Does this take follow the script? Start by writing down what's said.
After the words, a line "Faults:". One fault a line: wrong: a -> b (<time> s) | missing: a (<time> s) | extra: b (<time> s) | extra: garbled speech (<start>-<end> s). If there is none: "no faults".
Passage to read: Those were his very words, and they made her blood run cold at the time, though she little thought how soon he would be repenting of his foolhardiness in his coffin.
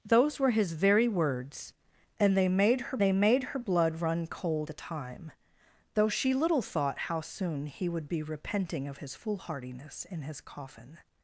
Those were his very words, and they made her they made her blood run cold the time, though she little thought how soon he would be repenting of his foolhardiness in his coffin.
Faults:
extra: they made her (3.0 s)
missing: at (4.7 s)